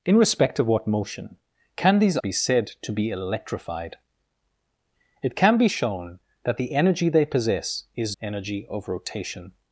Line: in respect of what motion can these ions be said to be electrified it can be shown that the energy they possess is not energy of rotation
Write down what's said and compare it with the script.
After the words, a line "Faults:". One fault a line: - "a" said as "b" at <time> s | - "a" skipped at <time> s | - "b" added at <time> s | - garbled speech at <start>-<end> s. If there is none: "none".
in respect of what motion can these be said to be electrified it can be shown that the energy they possess is energy of rotation
Faults:
- "ions" skipped at 2.2 s
- "not" skipped at 8.2 s